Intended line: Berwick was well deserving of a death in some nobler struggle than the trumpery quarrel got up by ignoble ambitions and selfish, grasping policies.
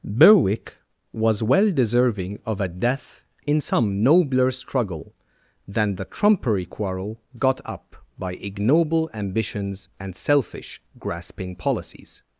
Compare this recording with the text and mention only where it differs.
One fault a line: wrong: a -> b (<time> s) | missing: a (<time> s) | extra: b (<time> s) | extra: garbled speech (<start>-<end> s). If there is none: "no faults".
no faults